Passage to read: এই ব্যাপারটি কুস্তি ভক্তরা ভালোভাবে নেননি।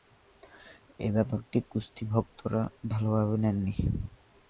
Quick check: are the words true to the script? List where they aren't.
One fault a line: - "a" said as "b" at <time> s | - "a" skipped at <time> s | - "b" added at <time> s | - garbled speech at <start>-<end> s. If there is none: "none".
none